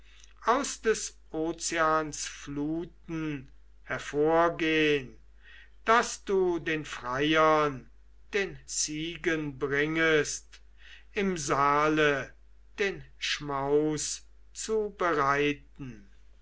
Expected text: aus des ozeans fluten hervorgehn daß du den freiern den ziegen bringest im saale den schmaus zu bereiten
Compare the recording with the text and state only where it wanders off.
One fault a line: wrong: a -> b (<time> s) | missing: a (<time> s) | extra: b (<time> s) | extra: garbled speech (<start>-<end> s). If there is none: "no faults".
no faults